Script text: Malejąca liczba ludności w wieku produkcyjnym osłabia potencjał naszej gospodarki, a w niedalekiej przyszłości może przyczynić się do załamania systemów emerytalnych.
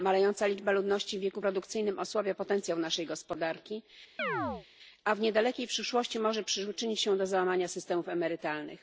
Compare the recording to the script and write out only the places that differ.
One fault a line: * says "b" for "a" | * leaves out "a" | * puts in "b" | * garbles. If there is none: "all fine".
all fine